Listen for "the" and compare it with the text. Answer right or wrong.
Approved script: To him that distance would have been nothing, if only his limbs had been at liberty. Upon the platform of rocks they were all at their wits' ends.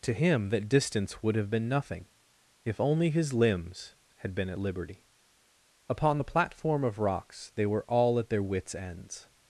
right